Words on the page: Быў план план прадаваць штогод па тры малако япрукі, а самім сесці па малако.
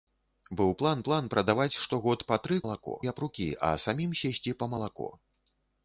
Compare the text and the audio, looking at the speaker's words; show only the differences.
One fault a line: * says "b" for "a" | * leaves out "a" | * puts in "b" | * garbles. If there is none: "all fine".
all fine